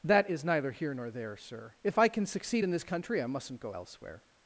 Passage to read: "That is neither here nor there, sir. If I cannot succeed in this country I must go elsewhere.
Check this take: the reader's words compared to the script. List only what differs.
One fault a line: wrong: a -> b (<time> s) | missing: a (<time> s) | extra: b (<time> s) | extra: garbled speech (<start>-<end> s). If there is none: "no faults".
wrong: cannot -> can (2.1 s)
wrong: must -> mustn't (3.3 s)